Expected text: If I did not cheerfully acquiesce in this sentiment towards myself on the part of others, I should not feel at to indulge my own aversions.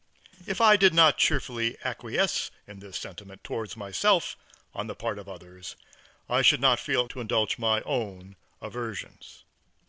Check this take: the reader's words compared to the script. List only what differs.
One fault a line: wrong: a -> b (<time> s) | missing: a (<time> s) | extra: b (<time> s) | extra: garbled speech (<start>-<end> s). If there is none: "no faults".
no faults